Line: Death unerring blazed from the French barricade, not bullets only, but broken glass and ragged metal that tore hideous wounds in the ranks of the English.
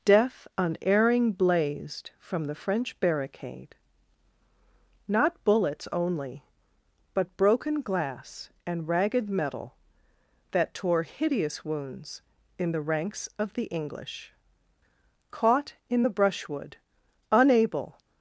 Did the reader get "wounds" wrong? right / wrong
right